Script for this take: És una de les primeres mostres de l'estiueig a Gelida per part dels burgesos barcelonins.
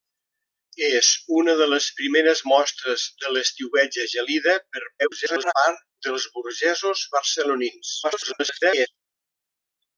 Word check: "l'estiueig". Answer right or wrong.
right